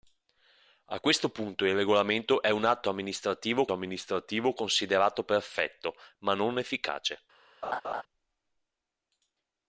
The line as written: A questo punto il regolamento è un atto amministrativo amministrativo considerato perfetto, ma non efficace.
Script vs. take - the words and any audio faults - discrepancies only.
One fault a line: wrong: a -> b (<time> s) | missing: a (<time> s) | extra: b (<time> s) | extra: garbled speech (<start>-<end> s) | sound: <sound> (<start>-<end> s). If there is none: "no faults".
sound: laugh (7.6-8.0 s)